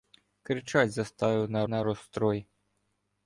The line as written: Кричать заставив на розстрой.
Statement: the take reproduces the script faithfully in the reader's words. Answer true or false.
false